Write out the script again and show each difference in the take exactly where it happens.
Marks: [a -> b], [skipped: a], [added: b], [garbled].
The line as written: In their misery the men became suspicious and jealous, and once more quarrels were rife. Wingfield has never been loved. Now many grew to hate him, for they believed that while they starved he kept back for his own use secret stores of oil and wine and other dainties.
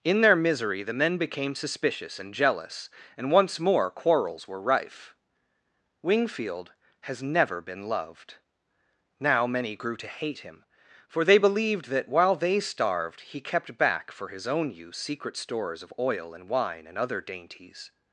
In their misery the men became suspicious and jealous, and once more quarrels were rife. Wingfield has never been loved. Now many grew to hate him, for they believed that while they starved he kept back for his own use secret stores of oil and wine and other dainties.